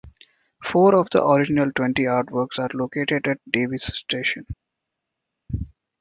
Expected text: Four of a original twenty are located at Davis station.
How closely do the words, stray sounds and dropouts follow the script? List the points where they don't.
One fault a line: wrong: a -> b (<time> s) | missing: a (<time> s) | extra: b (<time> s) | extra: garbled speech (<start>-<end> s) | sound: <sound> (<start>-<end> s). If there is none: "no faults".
wrong: a -> the (1.1 s)
extra: artworks (2.0 s)